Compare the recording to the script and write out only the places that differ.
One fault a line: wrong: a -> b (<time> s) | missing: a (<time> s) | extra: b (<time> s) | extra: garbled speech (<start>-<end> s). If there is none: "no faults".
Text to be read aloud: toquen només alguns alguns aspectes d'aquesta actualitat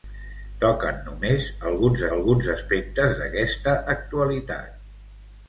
no faults